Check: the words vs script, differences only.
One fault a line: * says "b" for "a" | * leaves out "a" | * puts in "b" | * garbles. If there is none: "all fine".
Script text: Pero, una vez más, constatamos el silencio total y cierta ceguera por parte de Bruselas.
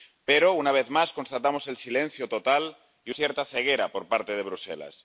all fine